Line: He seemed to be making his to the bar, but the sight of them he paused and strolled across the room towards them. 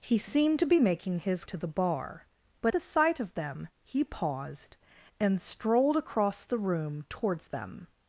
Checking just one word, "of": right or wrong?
right